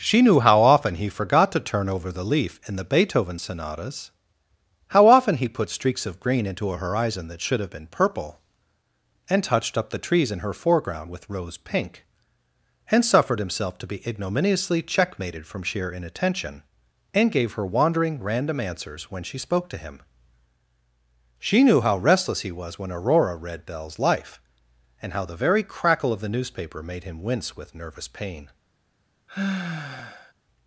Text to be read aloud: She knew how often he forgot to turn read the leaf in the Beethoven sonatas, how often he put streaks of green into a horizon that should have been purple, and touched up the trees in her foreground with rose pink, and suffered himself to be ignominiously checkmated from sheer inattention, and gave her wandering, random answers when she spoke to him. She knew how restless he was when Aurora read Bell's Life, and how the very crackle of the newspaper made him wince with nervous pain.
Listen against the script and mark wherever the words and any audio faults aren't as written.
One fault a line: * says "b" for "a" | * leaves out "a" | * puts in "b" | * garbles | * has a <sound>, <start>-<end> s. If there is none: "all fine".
* says "over" for "read"
* has a sigh, 29.3-30.3 s